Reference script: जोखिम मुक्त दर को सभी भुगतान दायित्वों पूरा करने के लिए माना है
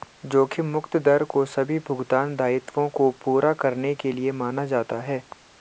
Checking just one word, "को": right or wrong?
right